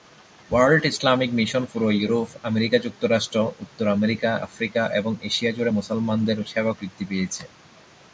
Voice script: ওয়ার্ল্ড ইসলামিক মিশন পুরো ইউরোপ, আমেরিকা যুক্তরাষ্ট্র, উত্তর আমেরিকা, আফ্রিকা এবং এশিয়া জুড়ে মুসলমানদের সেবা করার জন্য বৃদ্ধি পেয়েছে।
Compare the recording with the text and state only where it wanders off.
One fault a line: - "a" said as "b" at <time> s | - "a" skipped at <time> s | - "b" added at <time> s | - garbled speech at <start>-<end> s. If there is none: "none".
- "করার জন্য" skipped at 6.7 s